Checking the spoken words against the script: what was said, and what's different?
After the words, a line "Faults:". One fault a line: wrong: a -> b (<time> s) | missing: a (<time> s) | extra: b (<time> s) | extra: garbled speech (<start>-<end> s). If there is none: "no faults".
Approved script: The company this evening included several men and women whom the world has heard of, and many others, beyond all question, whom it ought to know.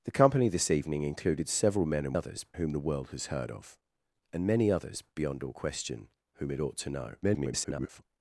The company this evening included several men and others whom the world has heard of, and many others, beyond all question, whom it ought to know. [garbled]
Faults:
wrong: women -> others (2.1 s)
extra: garbled speech (7.2-8.0 s)